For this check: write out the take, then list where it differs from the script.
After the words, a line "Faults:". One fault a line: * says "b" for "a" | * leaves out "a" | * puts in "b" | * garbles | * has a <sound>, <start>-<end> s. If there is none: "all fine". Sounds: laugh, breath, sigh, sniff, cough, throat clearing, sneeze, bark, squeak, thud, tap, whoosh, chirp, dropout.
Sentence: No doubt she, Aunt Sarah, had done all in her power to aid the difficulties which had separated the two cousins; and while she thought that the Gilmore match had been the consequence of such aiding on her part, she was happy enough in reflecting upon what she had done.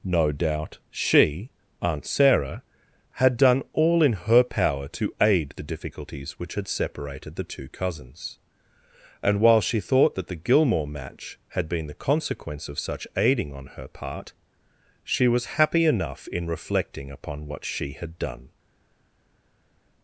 No doubt she, Aunt Sarah, had done all in her power to aid the difficulties which had separated the two cousins; and while she thought that the Gilmore match had been the consequence of such aiding on her part, she was happy enough in reflecting upon what she had done.
Faults:
all fine